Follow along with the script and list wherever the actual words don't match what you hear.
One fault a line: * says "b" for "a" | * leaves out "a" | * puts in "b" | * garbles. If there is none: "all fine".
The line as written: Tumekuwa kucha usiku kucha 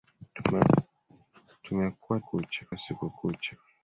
all fine